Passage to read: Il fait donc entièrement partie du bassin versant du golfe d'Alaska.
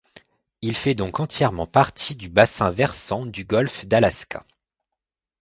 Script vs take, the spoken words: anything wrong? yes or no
no